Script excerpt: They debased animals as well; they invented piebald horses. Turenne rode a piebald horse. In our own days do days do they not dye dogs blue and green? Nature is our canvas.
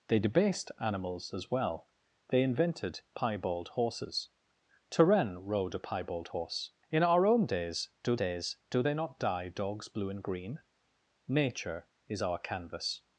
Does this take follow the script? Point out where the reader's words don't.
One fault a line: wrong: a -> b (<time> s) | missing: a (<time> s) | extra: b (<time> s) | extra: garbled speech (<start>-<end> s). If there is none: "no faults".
no faults